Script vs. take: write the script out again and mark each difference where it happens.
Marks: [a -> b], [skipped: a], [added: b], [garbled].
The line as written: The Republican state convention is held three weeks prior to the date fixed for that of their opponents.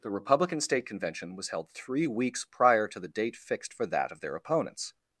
The Republican state convention [is -> was] held three weeks prior to the date fixed for that of their opponents.